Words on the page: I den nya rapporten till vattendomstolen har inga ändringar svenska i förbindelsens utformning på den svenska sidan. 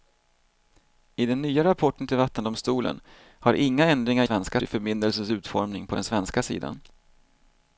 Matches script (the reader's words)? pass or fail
pass